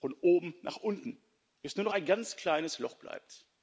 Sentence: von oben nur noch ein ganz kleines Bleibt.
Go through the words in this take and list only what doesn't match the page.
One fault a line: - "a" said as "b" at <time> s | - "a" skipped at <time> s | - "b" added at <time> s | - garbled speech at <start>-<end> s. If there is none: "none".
- "nach unten bis" added at 0.6 s
- "Loch" added at 2.8 s